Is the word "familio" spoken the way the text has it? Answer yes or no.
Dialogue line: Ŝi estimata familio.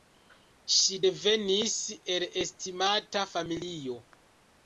yes